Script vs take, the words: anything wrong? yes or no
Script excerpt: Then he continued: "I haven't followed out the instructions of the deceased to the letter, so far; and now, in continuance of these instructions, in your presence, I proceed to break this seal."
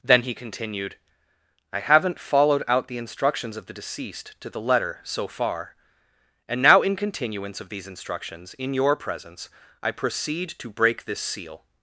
no